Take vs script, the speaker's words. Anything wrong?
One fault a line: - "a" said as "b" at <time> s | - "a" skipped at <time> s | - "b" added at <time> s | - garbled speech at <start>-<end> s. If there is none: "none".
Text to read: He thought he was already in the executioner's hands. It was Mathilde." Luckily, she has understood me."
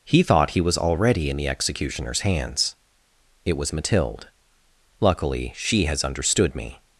none